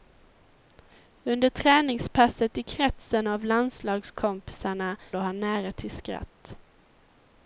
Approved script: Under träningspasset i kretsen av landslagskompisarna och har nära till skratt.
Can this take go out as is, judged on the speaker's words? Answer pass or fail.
pass